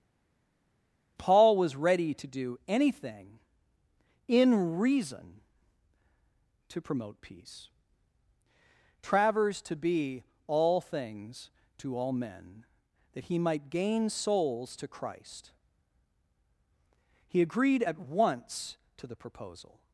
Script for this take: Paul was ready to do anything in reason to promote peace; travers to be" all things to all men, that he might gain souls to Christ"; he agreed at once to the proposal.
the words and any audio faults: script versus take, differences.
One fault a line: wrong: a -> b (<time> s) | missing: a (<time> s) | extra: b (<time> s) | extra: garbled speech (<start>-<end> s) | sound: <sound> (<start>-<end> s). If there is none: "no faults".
no faults